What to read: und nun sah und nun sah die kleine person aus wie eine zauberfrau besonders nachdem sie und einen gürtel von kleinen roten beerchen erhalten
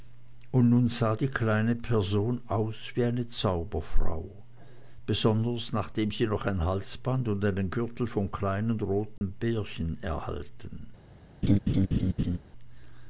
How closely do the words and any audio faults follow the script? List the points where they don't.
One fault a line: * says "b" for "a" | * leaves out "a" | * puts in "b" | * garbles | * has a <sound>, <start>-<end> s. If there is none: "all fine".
* leaves out "und nun sah"
* puts in "noch ein halsband"
* has a dropout, 9.2-9.2 s
* has a laugh, 11.4-12.4 s